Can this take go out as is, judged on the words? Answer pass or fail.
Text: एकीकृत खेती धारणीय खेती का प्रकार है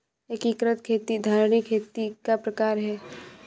pass